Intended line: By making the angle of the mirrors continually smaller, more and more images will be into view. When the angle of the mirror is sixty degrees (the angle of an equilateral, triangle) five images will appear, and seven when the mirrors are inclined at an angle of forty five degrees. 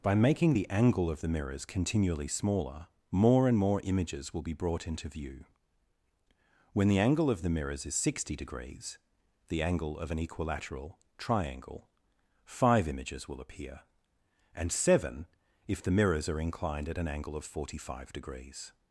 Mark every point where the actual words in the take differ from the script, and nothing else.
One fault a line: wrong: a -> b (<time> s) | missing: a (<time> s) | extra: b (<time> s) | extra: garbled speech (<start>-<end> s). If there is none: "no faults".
extra: brought (4.5 s)
wrong: mirror -> mirrors (7.5 s)
wrong: when -> if (15.7 s)